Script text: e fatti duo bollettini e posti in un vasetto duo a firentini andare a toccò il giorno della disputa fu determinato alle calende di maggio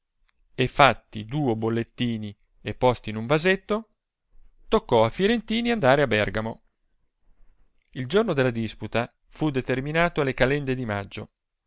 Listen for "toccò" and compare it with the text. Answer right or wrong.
wrong